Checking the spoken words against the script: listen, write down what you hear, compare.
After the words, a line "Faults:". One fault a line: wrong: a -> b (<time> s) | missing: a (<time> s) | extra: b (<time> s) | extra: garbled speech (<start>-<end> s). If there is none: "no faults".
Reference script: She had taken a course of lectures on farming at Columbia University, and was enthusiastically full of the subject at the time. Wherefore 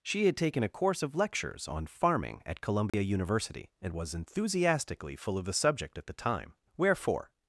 She had taken a course of lectures on farming at Columbia University, and was enthusiastically full of the subject at the time. Wherefore
Faults:
no faults